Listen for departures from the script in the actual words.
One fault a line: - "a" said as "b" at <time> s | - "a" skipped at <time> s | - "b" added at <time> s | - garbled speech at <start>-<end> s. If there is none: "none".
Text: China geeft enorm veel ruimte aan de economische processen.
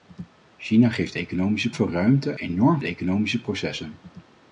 - "enorm" said as "economische" at 1.2 s
- "aan" said as "enorm" at 2.4 s